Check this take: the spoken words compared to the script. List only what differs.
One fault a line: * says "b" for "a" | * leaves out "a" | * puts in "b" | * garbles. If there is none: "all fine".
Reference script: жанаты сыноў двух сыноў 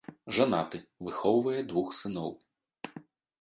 * says "выхоўвае" for "сыноў"